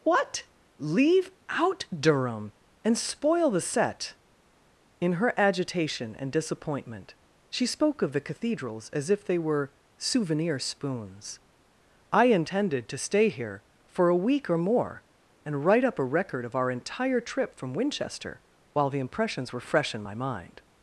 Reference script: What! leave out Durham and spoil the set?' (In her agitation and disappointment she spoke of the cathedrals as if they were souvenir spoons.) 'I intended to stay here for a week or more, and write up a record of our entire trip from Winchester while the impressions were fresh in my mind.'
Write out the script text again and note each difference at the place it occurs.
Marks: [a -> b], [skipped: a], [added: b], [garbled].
What! leave out Durham and spoil the set?' (In her agitation and disappointment she spoke of the cathedrals as if they were souvenir spoons.) 'I intended to stay here for a week or more, and write up a record of our entire trip from Winchester while the impressions were fresh in my mind.'